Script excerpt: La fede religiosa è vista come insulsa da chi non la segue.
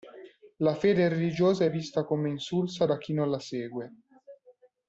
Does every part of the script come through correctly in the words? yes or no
yes